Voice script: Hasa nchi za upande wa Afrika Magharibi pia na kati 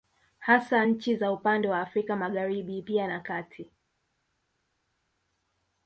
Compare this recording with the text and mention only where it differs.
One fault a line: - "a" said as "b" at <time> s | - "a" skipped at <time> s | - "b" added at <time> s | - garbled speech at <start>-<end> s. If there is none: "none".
none